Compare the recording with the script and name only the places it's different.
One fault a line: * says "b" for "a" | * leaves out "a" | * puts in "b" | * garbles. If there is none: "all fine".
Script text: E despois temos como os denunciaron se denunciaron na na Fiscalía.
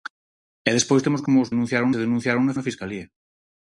all fine